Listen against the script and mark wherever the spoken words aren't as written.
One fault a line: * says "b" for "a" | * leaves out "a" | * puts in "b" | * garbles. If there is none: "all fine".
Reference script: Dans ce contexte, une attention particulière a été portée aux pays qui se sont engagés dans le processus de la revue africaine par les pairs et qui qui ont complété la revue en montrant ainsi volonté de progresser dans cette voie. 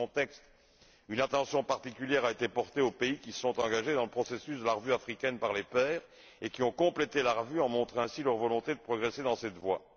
* leaves out "qui"
* puts in "leur"